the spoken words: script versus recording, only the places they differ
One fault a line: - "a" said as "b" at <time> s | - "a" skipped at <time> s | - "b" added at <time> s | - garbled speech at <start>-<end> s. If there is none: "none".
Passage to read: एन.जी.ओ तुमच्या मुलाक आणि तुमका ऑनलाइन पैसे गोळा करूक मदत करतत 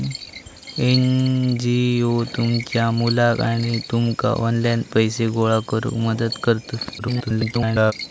- garbled speech at 7.0-7.9 s